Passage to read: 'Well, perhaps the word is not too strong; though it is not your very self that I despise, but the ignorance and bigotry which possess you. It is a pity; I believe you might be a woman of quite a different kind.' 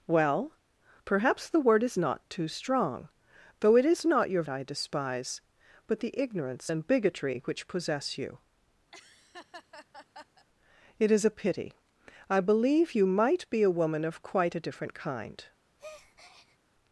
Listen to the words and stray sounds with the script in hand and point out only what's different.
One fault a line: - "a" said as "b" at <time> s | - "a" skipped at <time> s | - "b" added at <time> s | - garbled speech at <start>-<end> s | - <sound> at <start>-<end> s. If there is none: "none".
- "very self that" skipped at 4.4 s
- laugh at 8.9-10.5 s
- breath at 15.8-16.6 s